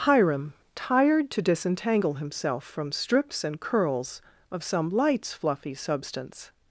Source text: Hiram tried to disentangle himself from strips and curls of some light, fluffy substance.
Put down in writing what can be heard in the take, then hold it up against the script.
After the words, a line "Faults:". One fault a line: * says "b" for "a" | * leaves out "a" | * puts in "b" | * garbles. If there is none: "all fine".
Hiram tired to disentangle himself from strips and curls of some lights, fluffy substance.
Faults:
* says "tired" for "tried"
* says "lights" for "light"